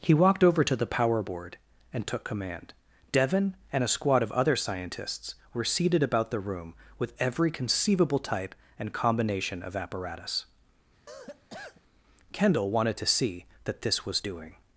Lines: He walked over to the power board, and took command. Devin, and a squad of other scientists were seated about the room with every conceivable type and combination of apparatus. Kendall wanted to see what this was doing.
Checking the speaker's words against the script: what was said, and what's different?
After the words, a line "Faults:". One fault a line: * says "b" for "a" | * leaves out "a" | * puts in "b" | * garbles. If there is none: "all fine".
He walked over to the power board, and took command. Devin, and a squad of other scientists were seated about the room with every conceivable type and combination of apparatus. Kendall wanted to see that this was doing.
Faults:
* says "that" for "what"